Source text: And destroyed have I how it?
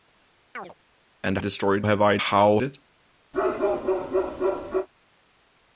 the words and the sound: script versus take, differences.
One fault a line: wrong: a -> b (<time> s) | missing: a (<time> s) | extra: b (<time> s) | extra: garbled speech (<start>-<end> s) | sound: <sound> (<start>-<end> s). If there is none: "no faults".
sound: chirp (0.5-0.7 s)
sound: bark (3.3-4.9 s)